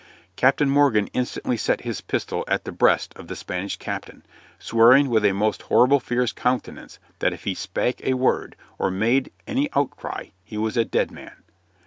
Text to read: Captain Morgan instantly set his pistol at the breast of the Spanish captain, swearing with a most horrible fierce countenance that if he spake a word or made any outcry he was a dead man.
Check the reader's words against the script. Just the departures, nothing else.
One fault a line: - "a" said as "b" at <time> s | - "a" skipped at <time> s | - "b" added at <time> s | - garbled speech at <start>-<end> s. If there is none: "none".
none